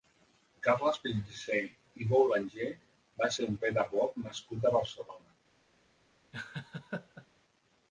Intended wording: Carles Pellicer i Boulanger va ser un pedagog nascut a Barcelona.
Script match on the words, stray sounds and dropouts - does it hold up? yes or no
no